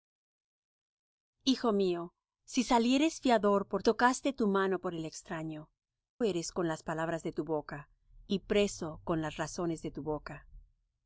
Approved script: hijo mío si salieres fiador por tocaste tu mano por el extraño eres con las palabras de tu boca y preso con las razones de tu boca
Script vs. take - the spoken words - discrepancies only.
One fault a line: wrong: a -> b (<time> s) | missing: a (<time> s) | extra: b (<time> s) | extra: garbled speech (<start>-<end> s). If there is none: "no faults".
no faults